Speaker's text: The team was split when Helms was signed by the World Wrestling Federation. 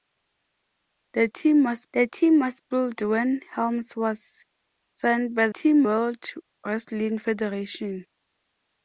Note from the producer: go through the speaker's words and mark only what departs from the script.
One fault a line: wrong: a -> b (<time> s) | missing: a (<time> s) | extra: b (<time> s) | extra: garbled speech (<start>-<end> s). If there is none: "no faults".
extra: the team was (1.9 s)
wrong: the -> team (5.5 s)